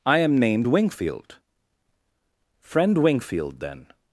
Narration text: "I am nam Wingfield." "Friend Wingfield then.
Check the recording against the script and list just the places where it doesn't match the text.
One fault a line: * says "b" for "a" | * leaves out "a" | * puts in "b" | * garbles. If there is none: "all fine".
* says "named" for "nam"